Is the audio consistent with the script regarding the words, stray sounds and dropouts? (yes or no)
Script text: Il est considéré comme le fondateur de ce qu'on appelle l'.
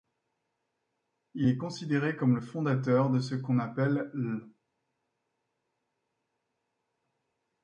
yes